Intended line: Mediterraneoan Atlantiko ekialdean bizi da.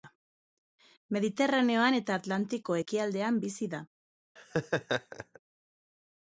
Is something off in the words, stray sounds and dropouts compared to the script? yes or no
yes